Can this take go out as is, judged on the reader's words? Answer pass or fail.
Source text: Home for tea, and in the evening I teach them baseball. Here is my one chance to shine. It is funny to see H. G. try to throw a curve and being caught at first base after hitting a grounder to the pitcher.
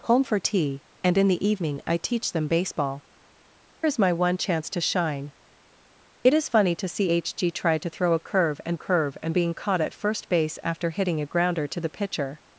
fail